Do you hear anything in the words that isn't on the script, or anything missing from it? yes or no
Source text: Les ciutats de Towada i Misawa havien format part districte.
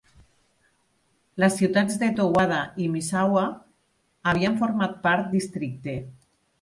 no